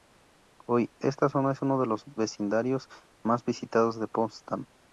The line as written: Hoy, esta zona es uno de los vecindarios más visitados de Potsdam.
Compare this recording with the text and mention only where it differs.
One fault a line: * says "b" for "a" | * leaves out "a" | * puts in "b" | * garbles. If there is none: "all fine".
all fine